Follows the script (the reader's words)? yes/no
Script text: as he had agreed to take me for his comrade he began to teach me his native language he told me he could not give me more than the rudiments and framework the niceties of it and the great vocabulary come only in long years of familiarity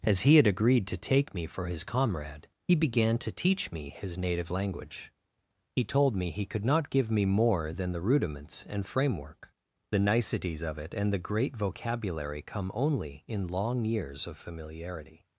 yes